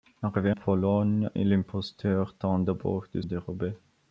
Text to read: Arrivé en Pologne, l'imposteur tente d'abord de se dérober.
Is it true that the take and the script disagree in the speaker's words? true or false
true